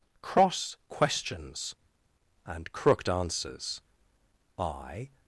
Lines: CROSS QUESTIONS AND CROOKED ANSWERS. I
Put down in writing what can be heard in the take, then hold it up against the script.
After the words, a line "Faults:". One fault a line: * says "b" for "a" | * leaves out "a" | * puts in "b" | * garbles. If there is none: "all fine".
CROSS QUESTIONS AND CROOKED ANSWERS. I
Faults:
all fine